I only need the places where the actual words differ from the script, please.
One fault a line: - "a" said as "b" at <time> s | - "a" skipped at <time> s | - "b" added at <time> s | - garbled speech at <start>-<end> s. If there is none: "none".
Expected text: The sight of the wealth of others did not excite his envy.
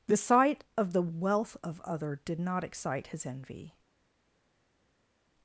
- "others" said as "other" at 1.8 s